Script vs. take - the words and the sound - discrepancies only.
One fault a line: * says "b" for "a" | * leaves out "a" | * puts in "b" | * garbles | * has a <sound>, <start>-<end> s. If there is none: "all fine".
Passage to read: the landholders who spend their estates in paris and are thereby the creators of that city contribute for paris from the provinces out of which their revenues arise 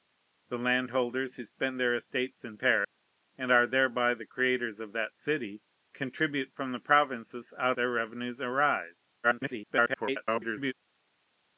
* has a dropout, 2.8-3.0 s
* leaves out "for paris"
* leaves out "of which"
* garbles